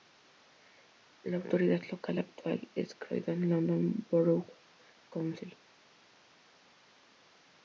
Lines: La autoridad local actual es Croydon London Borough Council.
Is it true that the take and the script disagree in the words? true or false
false